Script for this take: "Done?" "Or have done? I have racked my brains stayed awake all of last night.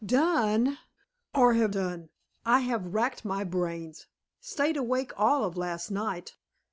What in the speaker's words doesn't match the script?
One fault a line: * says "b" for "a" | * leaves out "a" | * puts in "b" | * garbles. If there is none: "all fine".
all fine